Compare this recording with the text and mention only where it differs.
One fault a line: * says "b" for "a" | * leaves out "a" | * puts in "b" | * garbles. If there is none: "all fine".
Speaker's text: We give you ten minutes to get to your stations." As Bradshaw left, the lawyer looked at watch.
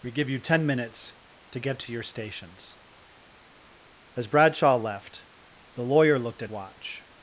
all fine